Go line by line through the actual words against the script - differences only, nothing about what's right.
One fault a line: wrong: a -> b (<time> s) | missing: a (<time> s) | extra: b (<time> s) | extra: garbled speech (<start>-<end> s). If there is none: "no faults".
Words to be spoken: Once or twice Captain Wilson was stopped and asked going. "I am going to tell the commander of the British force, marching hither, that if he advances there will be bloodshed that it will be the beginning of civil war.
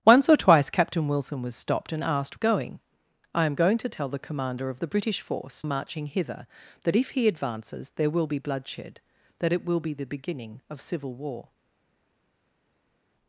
no faults